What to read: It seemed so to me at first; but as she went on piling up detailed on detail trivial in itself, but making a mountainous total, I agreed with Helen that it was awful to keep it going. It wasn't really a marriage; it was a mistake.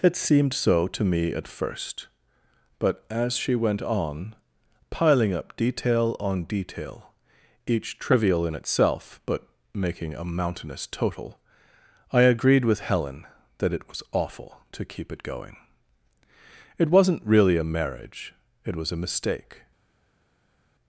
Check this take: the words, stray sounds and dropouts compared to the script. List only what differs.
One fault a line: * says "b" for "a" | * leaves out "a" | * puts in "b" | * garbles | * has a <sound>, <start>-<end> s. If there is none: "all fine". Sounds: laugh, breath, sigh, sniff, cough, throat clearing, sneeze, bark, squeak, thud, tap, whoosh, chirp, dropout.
* says "detail" for "detailed"
* puts in "each"